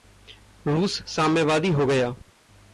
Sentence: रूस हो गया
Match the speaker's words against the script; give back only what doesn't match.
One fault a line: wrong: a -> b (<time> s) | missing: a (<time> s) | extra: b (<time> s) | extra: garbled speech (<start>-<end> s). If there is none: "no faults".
extra: साम्यवादी (1.1 s)